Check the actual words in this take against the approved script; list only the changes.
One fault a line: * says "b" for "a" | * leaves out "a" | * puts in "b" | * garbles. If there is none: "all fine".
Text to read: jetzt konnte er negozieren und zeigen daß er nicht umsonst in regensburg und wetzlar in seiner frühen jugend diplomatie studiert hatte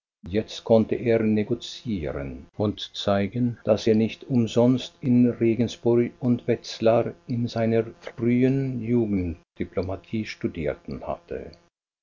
all fine